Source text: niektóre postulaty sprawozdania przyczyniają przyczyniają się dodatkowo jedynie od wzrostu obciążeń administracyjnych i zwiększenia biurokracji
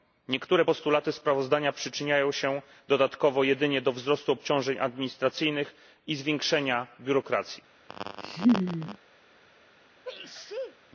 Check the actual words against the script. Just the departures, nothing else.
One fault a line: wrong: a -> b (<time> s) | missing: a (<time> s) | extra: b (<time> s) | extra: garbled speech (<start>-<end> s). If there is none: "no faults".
missing: przyczyniają (2.3 s)
wrong: od -> do (3.8 s)